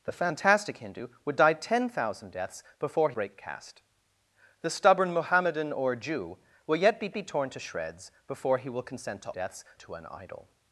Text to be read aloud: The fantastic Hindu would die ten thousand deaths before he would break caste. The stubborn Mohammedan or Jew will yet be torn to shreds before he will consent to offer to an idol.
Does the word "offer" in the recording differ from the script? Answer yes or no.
yes